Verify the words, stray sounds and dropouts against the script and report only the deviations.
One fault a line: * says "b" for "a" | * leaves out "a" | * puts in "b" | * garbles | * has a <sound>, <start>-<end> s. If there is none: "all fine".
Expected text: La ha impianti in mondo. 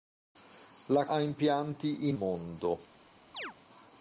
* has a chirp, 3.3-3.5 s